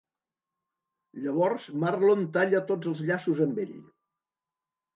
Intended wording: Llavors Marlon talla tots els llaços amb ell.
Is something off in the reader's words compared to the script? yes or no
no